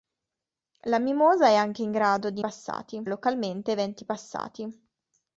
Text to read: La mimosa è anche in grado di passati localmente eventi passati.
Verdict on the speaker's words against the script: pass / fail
pass